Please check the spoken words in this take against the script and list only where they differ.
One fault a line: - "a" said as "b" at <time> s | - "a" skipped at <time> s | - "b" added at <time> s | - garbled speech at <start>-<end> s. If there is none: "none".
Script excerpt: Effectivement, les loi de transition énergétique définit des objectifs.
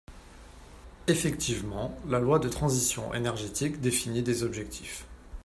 - "les" said as "la" at 2.1 s